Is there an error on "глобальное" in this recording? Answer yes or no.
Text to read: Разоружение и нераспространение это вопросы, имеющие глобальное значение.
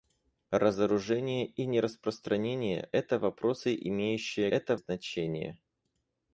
yes